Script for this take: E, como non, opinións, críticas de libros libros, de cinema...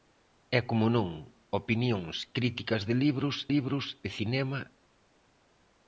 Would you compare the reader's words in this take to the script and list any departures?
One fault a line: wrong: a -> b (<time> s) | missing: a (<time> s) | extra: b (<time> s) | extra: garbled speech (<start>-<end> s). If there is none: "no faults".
no faults